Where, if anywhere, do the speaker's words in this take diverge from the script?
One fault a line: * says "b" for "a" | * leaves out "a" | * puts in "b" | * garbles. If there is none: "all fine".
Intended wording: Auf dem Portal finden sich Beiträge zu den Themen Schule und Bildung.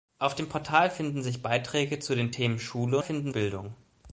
* says "finden" for "und"